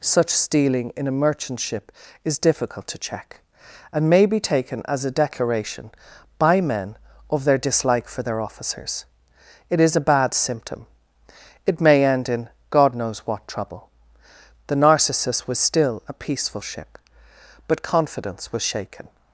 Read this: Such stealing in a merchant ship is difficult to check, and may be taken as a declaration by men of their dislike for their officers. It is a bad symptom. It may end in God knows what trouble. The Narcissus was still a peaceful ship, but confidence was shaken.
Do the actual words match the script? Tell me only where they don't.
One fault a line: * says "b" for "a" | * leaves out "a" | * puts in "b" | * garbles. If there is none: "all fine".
all fine